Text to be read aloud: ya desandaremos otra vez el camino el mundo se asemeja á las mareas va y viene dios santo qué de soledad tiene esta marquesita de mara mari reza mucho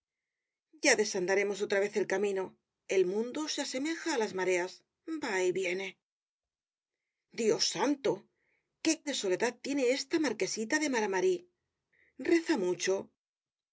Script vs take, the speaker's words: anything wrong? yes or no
no